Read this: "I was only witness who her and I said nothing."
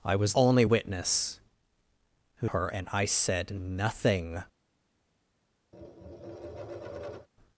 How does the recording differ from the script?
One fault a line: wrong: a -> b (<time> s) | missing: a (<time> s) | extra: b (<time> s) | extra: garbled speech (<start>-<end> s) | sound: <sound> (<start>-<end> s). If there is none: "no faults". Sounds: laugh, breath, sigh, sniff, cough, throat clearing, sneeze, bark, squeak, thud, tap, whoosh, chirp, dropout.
sound: tap (5.7-7.3 s)